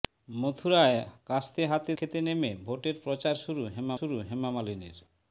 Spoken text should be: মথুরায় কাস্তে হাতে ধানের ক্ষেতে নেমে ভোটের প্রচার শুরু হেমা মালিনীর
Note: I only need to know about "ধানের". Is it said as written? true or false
false